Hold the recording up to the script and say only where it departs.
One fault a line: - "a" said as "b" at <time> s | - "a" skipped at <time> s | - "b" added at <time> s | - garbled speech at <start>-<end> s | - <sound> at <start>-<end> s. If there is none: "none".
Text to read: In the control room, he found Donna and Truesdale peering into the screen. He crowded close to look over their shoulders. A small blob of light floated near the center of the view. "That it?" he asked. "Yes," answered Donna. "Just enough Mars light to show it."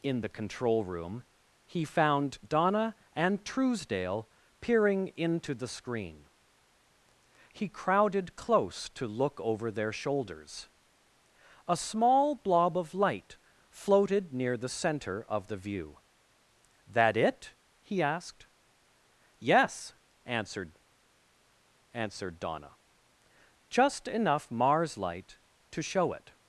- "answered" added at 21.9 s